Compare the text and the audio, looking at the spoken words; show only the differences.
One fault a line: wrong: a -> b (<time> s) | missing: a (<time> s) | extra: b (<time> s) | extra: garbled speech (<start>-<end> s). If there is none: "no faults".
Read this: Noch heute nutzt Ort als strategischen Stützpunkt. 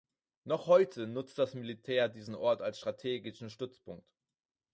extra: das Militär diesen (1.4 s)